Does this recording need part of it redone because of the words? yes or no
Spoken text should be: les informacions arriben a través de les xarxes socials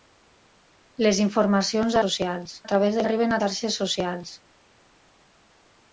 yes